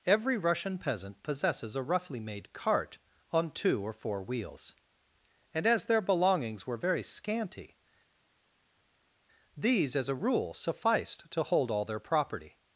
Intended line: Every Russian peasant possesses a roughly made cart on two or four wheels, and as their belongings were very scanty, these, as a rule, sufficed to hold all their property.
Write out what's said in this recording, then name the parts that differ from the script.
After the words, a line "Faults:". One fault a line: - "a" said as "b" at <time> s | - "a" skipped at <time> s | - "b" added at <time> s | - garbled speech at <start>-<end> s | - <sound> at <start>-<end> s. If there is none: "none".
Every Russian peasant possesses a roughly made cart on two or four wheels, and as their belongings were very scanty, these, as a rule, sufficed to hold all their property.
Faults:
none